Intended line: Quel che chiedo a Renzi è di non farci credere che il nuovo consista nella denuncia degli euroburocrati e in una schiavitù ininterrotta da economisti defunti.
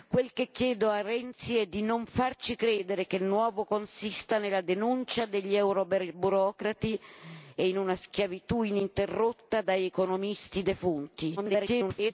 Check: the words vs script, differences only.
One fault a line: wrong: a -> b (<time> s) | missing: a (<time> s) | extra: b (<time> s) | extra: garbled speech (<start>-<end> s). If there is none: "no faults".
extra: garbled speech (11.4-12.1 s)